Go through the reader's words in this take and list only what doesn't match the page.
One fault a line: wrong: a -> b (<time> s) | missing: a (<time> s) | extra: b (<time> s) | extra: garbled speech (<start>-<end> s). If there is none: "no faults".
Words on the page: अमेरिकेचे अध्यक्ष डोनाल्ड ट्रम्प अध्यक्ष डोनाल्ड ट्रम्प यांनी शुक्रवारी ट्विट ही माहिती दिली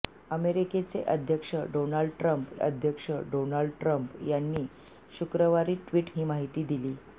no faults